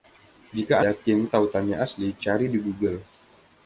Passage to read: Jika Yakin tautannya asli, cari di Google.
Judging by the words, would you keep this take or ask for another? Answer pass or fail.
pass